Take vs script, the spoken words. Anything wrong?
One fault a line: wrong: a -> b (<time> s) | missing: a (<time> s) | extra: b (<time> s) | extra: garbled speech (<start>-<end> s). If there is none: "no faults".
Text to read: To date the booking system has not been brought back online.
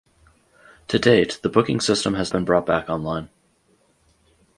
missing: not (2.3 s)